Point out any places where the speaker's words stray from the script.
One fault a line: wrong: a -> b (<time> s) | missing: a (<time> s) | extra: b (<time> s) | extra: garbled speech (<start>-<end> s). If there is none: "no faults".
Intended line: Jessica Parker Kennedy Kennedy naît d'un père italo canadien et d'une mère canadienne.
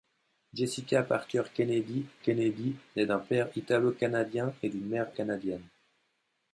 no faults